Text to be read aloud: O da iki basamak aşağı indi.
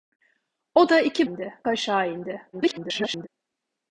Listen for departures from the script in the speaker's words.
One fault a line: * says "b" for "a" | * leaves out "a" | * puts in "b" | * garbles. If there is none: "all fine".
* says "indi" for "basamak"
* garbles